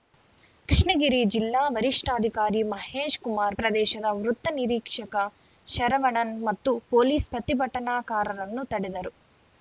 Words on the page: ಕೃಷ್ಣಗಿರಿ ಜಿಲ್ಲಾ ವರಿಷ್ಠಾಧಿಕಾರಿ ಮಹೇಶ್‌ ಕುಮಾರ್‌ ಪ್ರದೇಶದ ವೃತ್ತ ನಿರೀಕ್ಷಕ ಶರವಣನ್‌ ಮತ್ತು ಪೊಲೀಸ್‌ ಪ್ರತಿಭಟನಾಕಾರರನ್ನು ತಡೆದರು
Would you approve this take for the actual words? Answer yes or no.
yes